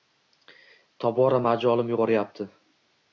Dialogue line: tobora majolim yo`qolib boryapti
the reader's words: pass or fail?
fail